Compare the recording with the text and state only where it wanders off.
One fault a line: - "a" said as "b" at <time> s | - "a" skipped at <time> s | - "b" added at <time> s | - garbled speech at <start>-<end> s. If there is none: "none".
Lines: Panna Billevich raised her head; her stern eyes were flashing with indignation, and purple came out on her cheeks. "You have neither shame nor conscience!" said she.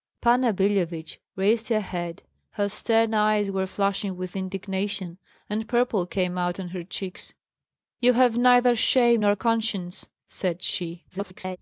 - garbled speech at 11.1-11.6 s